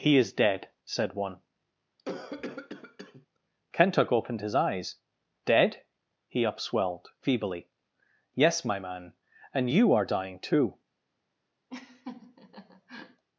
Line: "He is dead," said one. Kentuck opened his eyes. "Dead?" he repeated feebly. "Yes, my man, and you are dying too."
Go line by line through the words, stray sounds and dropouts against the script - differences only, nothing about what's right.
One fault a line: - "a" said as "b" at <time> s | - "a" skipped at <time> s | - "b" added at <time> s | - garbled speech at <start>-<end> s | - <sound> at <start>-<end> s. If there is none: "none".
- cough at 2.0-3.3 s
- "repeated" said as "upswelled" at 6.4 s
- laugh at 11.7-13.2 s